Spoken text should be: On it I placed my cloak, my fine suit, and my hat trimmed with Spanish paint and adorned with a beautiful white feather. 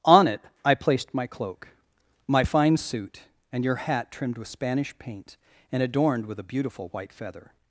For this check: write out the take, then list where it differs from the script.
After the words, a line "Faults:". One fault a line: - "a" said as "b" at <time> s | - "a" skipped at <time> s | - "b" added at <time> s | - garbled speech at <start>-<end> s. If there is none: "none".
On it I placed my cloak, my fine suit, and your hat trimmed with Spanish paint and adorned with a beautiful white feather.
Faults:
- "my" said as "your" at 3.6 s